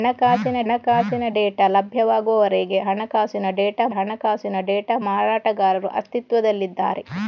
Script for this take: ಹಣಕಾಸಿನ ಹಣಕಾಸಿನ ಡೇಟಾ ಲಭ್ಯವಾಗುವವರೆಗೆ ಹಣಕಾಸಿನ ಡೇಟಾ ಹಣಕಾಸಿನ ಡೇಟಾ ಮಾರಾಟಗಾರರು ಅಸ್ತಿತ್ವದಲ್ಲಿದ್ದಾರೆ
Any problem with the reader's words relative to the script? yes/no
no